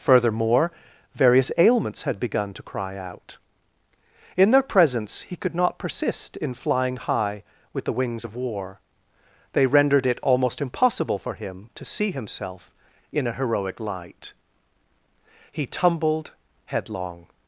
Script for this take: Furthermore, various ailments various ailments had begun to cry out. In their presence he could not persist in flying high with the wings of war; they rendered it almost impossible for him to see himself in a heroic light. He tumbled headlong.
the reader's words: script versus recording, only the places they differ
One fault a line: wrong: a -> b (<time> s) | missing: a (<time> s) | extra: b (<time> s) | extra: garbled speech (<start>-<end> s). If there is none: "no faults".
missing: various ailments (2.0 s)